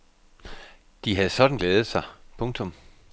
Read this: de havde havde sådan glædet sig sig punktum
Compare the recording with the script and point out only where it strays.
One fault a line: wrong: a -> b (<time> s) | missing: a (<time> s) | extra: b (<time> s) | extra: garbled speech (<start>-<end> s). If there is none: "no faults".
missing: havde (1.3 s)
missing: sig (2.0 s)